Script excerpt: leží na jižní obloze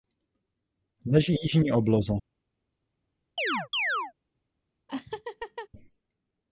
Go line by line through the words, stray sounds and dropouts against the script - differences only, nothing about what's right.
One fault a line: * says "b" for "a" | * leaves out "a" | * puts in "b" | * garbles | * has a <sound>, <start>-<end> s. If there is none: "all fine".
* leaves out "na"
* has a chirp, 3.4-4.1 s
* has a laugh, 4.9-5.7 s